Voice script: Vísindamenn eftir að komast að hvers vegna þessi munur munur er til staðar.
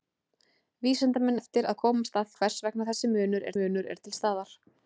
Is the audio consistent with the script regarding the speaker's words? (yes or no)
yes